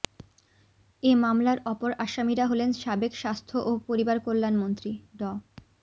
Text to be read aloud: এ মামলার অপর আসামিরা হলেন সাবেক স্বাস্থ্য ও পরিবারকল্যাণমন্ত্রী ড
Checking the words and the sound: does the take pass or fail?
pass